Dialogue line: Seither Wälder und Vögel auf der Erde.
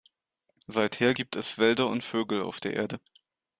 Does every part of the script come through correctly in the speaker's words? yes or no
no